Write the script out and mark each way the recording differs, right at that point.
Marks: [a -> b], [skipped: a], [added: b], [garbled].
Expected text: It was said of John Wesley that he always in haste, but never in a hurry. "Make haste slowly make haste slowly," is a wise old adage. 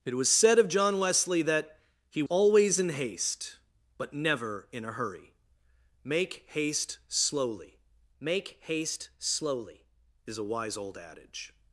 It was said of John Wesley that he always in haste, but never in a hurry. "Make haste slowly make haste slowly," is a wise old adage.